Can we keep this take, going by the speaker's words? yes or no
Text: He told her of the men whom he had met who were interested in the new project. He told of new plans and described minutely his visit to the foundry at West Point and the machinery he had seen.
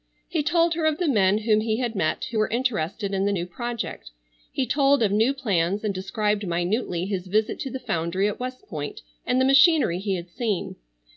yes